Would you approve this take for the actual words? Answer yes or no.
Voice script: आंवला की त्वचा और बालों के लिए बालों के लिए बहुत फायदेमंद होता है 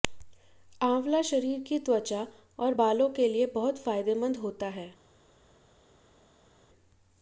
no